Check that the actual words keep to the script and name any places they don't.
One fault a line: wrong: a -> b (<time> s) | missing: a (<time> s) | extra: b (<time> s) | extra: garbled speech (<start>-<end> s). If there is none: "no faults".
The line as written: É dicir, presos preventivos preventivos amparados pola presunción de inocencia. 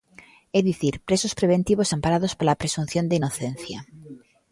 missing: preventivos (1.9 s)